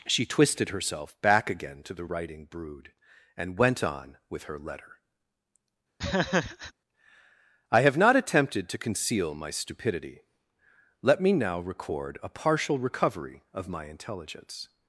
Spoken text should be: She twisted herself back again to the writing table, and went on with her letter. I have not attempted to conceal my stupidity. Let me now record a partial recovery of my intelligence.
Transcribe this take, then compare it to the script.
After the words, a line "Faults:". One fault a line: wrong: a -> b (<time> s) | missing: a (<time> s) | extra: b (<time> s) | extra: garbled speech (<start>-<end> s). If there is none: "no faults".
She twisted herself back again to the writing brood, and went on with her letter. I have not attempted to conceal my stupidity. Let me now record a partial recovery of my intelligence.
Faults:
wrong: table -> brood (2.4 s)